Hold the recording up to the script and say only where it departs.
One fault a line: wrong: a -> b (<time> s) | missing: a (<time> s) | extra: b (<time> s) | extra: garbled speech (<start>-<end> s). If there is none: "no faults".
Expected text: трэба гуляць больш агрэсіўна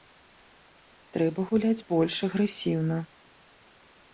no faults